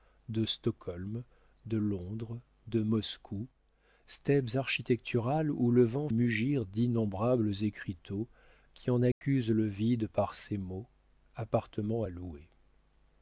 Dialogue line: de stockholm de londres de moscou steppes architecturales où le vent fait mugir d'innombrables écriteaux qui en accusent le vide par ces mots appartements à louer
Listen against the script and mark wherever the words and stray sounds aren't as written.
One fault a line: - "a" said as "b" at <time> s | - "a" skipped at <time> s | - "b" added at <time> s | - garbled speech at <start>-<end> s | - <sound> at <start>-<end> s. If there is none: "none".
- "fait" skipped at 6.1 s
- dropout at 9.1-9.2 s